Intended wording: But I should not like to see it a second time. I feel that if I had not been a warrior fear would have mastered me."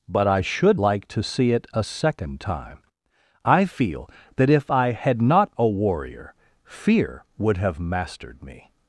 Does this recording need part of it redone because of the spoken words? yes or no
yes